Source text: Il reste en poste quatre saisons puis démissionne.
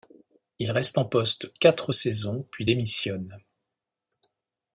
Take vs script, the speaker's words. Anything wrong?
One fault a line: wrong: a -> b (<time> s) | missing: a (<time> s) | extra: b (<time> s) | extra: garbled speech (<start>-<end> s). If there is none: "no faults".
no faults